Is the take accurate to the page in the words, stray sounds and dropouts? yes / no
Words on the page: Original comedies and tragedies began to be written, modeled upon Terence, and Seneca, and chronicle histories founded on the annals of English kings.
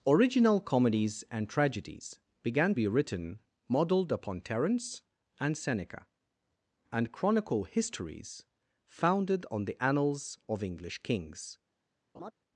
no